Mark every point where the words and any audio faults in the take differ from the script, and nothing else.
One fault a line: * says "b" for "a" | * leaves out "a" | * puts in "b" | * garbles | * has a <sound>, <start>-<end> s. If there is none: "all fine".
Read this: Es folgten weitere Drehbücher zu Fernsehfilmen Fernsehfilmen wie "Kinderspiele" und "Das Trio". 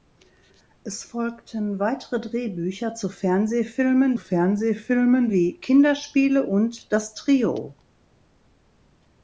all fine